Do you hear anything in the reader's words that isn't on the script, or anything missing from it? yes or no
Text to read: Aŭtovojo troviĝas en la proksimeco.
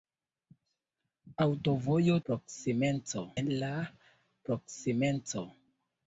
yes